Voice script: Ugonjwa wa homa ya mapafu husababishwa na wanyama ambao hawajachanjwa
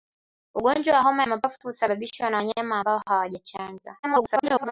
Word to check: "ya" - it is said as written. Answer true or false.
false